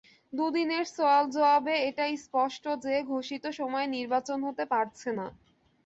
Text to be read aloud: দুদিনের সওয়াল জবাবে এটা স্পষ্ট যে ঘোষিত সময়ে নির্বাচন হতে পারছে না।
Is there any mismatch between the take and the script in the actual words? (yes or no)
no